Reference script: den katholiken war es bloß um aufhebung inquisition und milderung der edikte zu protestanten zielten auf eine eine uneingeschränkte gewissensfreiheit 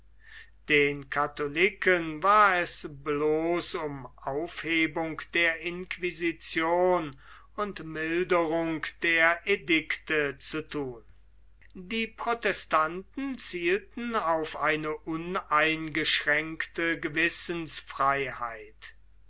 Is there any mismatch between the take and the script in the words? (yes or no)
yes